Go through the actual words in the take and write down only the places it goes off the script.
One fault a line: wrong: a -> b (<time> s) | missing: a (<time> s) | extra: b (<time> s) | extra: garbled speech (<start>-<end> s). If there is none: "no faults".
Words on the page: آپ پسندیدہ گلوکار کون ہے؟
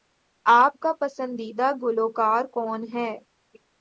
extra: کا (0.8 s)